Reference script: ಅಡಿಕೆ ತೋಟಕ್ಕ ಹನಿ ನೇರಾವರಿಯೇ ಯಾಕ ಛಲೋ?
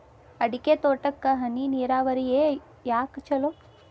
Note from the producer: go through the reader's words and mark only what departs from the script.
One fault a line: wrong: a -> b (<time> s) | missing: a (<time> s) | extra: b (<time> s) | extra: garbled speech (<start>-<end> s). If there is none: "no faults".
no faults